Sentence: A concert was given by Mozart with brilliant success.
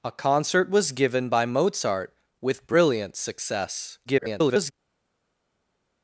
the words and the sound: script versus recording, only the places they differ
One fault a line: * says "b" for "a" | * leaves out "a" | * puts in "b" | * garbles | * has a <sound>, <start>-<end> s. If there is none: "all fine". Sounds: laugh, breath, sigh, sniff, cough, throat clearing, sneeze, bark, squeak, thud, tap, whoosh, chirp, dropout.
* garbles